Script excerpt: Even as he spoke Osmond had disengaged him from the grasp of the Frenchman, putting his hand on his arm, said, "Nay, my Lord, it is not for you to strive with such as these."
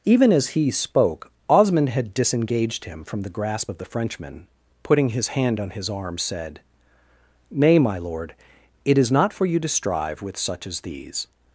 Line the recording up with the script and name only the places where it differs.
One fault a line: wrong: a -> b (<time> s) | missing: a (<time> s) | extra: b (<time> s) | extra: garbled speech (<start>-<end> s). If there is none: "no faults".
no faults